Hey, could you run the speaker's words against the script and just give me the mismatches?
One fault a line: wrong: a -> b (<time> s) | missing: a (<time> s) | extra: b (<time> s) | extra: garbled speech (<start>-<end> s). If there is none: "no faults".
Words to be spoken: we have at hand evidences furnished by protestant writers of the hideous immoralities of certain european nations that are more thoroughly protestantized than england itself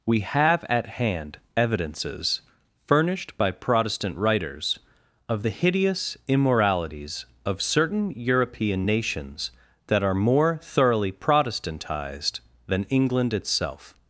no faults